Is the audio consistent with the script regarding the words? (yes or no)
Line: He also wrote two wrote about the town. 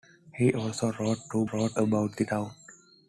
yes